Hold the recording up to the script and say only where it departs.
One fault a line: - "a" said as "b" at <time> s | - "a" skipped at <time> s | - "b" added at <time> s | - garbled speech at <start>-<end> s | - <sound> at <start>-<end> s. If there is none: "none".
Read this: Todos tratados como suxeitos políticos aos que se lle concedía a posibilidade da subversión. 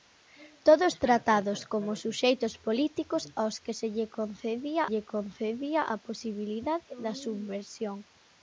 - "lle concedía" added at 4.9 s